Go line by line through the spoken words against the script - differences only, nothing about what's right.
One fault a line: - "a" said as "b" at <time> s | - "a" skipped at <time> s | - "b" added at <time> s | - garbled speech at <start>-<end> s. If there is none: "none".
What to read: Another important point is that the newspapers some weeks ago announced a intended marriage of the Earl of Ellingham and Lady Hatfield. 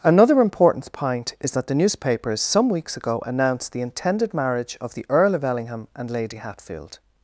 - "a" said as "the" at 3.7 s